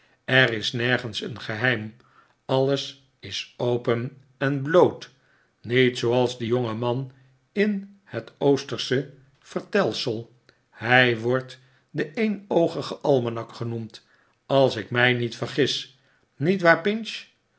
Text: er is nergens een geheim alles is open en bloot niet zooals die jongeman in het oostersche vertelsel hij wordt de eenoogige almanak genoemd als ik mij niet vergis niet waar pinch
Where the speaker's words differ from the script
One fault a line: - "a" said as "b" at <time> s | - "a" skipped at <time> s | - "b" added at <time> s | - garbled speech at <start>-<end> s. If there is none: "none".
none